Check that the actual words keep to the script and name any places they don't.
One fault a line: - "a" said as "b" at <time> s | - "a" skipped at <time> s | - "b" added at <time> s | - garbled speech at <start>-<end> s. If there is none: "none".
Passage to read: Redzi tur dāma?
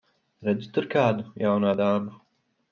- "kādu jaunā" added at 0.9 s